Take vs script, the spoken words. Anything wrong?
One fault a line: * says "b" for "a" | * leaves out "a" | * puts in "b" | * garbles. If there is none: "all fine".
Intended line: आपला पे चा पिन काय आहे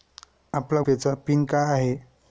all fine